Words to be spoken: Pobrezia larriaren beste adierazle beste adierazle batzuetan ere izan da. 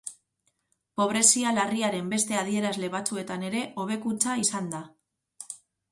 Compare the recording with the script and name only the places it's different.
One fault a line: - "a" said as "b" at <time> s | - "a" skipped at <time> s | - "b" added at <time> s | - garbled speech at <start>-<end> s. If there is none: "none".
- "beste adierazle" skipped at 2.9 s
- "hobekuntza" added at 3.8 s